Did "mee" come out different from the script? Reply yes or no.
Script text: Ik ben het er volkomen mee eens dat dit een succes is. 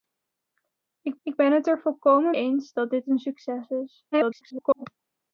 yes